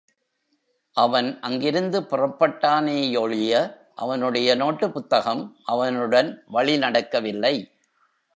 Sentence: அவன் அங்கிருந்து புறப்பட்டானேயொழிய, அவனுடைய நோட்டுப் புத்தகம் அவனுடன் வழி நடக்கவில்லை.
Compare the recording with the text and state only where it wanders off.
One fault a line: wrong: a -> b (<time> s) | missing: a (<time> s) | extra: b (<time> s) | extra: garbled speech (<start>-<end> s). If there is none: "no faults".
no faults